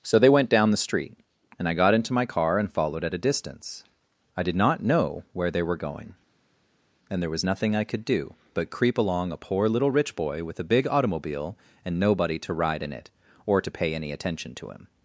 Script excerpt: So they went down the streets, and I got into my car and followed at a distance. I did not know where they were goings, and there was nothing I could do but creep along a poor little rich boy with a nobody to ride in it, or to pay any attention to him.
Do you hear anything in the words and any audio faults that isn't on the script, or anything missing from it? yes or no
yes